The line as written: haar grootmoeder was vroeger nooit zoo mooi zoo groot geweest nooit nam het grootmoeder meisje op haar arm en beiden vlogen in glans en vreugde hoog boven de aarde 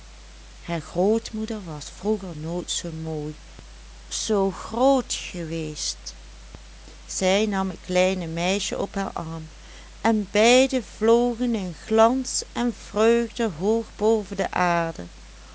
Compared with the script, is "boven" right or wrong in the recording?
right